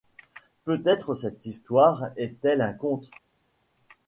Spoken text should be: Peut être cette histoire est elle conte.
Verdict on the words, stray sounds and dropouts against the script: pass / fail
fail